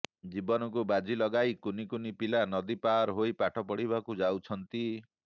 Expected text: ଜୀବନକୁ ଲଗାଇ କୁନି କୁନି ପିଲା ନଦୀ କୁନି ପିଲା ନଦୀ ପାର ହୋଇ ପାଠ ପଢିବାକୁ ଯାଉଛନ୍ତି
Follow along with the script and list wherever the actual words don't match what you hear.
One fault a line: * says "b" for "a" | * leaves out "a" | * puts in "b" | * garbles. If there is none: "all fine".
* puts in "ବାଜି"
* leaves out "କୁନି ପିଲା ନଦୀ"